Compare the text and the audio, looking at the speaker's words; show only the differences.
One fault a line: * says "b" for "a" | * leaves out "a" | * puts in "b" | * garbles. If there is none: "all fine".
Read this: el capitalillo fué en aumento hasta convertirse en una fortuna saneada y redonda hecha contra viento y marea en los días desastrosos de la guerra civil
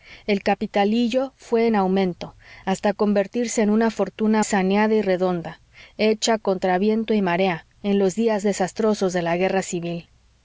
all fine